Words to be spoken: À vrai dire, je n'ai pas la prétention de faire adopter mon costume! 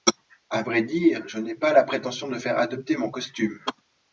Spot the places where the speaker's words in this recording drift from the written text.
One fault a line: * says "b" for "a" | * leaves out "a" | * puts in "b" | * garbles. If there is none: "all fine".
all fine